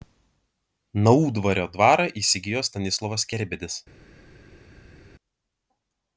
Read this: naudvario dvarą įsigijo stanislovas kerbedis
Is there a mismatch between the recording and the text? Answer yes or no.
no